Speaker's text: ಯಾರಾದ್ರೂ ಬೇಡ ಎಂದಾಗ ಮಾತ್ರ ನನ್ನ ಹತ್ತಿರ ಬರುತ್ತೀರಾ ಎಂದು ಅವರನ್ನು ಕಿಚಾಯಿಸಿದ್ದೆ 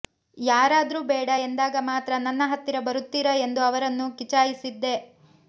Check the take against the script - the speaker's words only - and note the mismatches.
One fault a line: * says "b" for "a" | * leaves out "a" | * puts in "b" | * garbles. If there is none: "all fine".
all fine